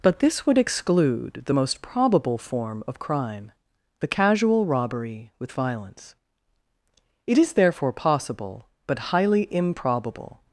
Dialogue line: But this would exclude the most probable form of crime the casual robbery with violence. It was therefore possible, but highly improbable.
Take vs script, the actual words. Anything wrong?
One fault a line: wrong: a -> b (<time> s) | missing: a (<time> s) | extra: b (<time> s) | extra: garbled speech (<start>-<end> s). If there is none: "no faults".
wrong: was -> is (7.4 s)